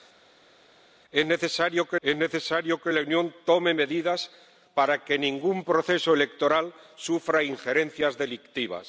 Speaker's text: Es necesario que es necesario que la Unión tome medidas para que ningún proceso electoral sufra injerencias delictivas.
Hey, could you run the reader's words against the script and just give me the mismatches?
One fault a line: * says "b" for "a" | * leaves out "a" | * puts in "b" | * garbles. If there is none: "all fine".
all fine